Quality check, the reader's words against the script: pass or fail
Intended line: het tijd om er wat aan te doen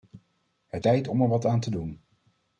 pass